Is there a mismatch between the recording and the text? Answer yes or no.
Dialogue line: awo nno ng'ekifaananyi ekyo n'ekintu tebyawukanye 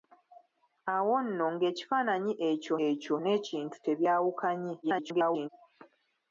yes